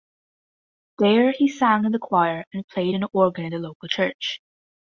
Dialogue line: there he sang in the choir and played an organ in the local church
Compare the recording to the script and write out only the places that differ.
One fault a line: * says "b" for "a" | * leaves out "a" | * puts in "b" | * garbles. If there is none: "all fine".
all fine